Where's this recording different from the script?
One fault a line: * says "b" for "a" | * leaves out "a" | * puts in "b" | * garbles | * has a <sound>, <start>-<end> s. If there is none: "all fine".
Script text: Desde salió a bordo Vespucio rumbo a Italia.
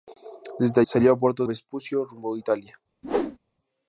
* has a whoosh, 3.0-3.4 s